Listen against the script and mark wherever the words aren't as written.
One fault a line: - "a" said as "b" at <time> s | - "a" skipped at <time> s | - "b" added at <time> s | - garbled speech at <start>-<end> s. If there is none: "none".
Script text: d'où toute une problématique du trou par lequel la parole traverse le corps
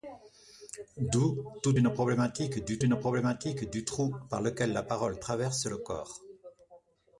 - "une problématique du" added at 2.8 s